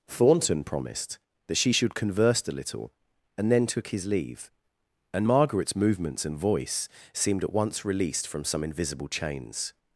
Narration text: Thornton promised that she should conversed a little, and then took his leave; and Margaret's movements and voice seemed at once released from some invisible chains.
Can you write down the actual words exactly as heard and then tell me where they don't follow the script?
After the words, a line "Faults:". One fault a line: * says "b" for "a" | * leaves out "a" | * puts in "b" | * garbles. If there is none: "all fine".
Thornton promised that she should converse a little, and then took his leave; and Margaret's movements and voice seemed at once released from some invisible chains.
Faults:
* says "converse" for "conversed"